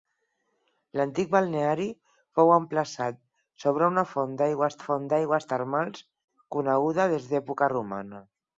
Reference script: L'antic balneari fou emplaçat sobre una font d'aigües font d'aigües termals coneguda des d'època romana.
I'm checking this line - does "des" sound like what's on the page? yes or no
yes